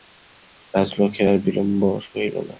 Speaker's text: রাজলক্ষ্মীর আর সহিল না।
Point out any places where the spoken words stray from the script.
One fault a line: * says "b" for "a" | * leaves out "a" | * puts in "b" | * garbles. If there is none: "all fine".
* puts in "বিলম্ব"